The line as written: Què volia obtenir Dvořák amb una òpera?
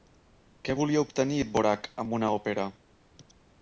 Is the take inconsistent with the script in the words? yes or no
no